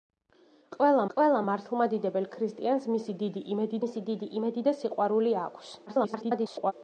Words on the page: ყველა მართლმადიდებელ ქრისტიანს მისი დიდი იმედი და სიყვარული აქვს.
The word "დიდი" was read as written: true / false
true